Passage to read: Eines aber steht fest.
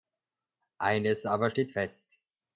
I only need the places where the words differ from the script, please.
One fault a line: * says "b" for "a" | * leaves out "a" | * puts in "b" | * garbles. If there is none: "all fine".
all fine